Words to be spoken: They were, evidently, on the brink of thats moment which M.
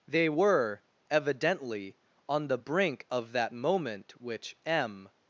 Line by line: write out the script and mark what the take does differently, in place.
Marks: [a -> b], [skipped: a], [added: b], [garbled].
They were, evidently, on the brink of [thats -> that] moment which M.